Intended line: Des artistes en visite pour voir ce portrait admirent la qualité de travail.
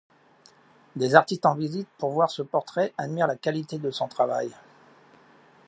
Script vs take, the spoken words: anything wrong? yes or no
yes